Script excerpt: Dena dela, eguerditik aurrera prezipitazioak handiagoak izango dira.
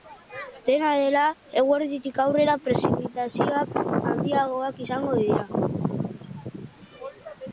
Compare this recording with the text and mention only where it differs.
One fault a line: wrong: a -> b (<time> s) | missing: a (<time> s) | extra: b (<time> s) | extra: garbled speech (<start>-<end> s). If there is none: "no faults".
no faults